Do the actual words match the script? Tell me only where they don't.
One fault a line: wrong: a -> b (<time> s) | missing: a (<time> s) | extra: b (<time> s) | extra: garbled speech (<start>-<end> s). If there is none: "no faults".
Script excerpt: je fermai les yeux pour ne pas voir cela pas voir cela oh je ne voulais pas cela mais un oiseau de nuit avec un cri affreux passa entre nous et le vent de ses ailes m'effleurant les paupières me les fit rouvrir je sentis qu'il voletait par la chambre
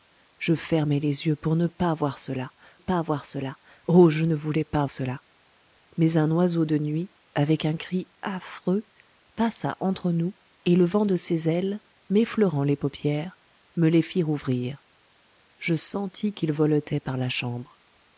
no faults